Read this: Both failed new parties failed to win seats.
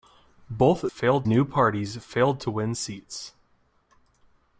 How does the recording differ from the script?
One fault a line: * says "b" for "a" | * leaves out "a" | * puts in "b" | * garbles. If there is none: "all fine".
all fine